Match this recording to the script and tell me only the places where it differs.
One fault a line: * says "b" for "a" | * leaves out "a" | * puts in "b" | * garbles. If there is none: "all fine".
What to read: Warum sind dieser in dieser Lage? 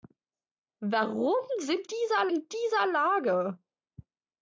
all fine